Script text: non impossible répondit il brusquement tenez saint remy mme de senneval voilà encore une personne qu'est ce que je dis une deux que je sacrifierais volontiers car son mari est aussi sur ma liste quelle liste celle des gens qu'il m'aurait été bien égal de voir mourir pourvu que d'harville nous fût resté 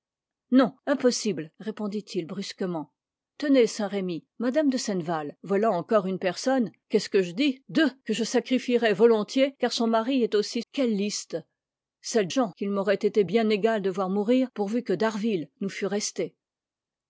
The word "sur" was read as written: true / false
false